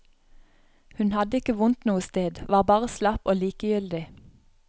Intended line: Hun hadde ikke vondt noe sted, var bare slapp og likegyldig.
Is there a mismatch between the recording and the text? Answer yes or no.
no